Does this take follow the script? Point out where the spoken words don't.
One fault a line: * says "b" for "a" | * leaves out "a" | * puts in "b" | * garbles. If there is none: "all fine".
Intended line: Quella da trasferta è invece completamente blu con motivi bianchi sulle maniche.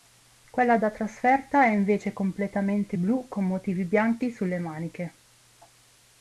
all fine